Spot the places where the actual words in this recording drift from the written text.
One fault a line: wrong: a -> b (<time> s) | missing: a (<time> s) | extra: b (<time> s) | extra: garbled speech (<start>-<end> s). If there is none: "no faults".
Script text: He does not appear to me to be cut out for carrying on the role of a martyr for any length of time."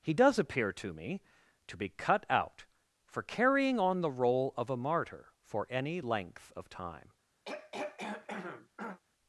missing: not (0.4 s)